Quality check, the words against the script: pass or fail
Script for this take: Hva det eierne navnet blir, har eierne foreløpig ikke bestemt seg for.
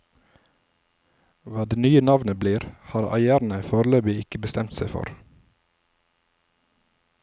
fail